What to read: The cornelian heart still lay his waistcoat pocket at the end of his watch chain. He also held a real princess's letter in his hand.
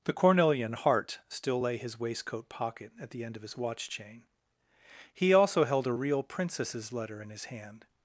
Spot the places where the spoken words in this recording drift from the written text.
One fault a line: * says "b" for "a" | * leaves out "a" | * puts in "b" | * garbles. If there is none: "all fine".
all fine